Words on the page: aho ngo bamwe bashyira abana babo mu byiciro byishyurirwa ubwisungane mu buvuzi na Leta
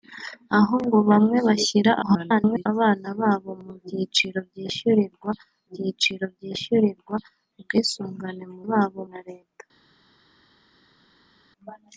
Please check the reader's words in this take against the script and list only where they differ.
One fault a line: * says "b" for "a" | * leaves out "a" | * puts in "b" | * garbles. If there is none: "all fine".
* garbles
* puts in "byiciro byishyurirwa"
* says "babo" for "buvuzi"